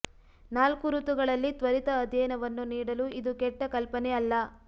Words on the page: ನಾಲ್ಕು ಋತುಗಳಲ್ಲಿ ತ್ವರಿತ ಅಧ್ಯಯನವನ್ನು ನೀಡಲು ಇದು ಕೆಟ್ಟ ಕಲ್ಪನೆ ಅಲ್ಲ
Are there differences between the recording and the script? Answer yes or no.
no